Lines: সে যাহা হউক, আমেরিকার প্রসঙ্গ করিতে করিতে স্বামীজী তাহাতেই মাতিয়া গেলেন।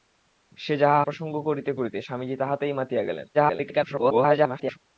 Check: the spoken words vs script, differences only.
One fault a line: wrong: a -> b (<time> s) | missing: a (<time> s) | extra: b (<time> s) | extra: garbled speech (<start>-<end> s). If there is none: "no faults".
missing: হউক আমেরিকার (1.0 s)
extra: garbled speech (3.3-4.8 s)